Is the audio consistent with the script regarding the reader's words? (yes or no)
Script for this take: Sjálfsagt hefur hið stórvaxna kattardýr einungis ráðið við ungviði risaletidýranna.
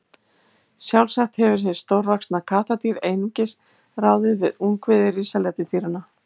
yes